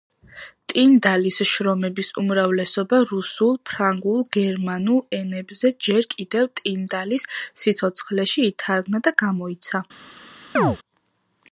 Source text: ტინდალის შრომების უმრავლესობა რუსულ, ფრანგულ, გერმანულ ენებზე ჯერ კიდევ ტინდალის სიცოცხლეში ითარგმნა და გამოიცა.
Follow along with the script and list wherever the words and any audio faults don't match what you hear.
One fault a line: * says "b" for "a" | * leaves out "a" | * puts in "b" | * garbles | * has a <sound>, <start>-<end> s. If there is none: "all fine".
* has a chirp, 10.6-10.8 s